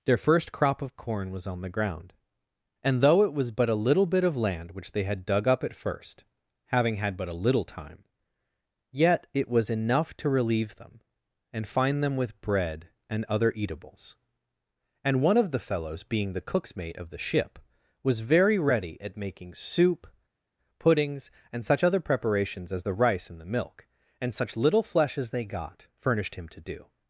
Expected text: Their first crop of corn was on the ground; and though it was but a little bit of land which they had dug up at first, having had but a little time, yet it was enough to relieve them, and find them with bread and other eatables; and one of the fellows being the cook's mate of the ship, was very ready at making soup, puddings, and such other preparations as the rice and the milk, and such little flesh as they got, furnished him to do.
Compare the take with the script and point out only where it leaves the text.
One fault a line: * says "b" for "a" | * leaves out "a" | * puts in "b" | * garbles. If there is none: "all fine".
all fine